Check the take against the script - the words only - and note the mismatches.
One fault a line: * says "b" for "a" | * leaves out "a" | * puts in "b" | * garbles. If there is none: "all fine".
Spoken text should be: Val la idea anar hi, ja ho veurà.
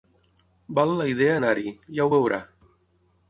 all fine